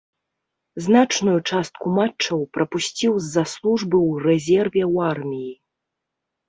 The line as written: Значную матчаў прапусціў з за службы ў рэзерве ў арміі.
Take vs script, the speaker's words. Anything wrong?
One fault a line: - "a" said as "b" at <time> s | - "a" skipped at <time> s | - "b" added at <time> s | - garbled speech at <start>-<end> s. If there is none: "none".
- "частку" added at 1.5 s